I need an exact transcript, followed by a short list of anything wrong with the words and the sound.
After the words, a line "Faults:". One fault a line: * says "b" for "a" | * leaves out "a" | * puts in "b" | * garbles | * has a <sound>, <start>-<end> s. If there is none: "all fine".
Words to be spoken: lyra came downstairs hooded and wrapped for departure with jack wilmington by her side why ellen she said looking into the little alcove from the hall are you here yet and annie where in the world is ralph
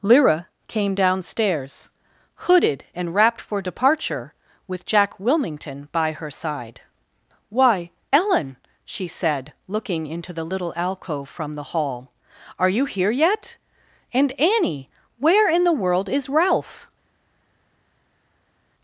lyra came downstairs hooded and wrapped for departure with jack wilmington by her side why ellen she said looking into the little alcove from the hall are you here yet and annie where in the world is ralph
Faults:
all fine